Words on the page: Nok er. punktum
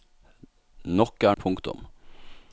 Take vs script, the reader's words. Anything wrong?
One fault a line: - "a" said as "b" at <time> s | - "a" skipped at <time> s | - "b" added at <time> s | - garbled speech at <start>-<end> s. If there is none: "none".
none